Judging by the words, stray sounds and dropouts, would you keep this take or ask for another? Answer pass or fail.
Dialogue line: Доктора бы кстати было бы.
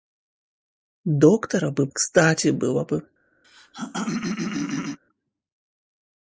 fail